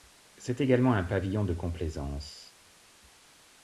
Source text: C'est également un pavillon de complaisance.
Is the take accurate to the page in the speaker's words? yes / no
yes